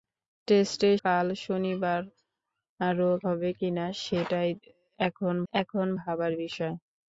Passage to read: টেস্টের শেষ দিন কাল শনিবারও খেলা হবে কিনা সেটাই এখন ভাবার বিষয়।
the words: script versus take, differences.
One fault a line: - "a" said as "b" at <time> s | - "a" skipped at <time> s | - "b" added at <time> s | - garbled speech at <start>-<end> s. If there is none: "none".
- "শেষ দিন" skipped at 1.0 s
- "খেলা" skipped at 3.1 s
- "এখন" added at 5.5 s